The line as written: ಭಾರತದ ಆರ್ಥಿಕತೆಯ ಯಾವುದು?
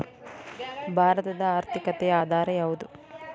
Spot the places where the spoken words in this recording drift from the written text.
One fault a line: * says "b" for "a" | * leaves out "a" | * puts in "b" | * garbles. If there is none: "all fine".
* puts in "ಆಧಾರ"